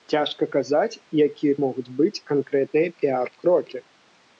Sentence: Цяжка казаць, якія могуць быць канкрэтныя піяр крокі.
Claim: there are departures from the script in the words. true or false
false